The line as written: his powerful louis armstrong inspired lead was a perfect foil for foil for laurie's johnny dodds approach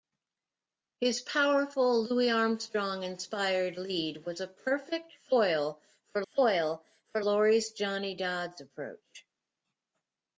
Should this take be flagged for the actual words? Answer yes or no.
no